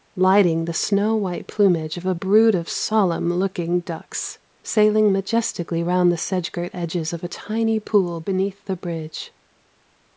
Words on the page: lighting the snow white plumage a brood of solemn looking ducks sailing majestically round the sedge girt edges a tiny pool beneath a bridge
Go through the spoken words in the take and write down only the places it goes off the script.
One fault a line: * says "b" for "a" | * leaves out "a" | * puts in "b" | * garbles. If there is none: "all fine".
* puts in "of"
* puts in "of"
* says "the" for "a"